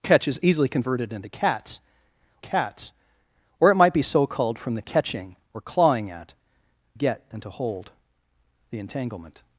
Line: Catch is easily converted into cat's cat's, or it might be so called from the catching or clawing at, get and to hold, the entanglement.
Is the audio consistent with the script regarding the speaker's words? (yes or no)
yes